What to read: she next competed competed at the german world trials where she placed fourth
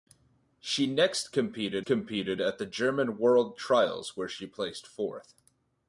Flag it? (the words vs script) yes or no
no